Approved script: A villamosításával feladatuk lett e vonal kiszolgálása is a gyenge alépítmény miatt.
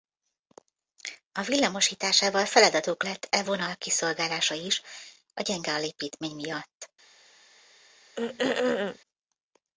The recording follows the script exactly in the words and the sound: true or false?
false